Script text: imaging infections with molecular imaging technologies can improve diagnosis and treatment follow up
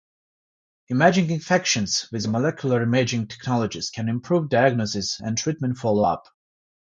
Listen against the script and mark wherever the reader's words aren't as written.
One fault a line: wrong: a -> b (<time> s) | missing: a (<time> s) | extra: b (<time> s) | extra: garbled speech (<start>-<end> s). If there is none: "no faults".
no faults